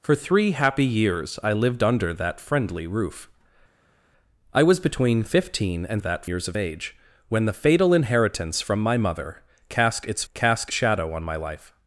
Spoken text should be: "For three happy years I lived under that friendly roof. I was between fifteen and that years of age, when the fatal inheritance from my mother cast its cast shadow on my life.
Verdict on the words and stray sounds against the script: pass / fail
pass